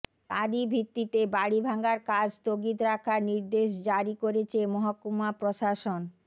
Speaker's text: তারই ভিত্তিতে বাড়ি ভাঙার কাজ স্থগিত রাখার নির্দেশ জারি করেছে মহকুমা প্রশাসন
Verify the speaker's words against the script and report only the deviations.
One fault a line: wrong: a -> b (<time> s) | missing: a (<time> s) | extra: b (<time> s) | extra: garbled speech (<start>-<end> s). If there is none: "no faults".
no faults